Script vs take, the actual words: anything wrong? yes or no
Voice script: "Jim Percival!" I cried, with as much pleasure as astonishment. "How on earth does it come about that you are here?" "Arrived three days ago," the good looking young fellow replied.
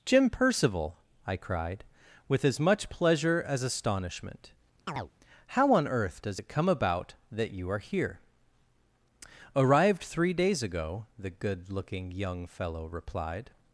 no